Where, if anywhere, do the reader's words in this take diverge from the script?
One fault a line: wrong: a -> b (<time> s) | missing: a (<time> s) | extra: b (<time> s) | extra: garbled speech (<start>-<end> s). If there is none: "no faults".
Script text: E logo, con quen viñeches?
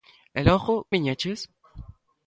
missing: con quen (0.7 s)